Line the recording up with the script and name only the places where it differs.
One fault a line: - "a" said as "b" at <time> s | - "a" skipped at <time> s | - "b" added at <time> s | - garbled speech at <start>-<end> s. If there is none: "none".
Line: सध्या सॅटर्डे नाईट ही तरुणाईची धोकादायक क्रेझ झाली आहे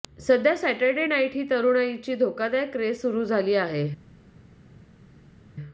- "सुरू" added at 2.9 s